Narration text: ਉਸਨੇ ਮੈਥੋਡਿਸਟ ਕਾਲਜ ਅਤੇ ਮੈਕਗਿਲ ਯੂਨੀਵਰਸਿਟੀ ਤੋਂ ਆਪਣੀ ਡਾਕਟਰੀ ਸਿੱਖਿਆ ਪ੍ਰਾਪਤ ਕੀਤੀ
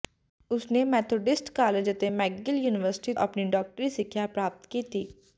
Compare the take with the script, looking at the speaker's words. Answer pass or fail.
fail